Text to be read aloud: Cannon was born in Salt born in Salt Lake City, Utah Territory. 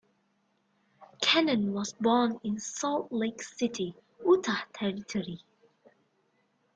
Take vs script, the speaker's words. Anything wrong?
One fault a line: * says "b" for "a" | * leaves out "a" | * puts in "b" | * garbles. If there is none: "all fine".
* leaves out "born in Salt"